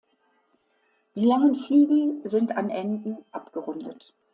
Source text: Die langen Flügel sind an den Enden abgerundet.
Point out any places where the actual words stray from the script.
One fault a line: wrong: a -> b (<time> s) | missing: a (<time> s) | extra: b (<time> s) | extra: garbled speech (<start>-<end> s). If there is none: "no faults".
missing: den (2.7 s)